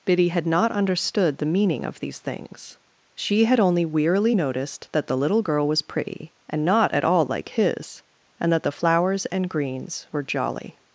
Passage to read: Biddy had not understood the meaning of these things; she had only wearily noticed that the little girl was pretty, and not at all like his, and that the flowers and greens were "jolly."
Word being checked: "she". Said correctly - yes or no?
yes